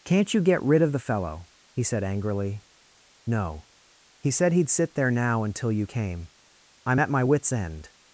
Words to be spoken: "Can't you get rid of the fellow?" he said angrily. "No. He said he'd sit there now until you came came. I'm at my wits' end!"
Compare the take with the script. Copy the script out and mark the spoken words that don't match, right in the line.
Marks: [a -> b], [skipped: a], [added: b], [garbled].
"Can't you get rid of the fellow?" he said angrily. "No. He said he'd sit there now until you came [skipped: came.] I'm at my wits' end!"